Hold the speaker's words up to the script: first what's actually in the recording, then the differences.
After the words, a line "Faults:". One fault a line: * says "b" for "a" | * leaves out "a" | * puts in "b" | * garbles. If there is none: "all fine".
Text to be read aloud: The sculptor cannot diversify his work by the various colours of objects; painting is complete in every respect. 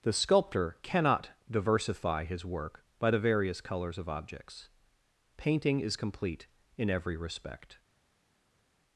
The sculptor cannot diversify his work by the various colours of objects; painting is complete in every respect.
Faults:
all fine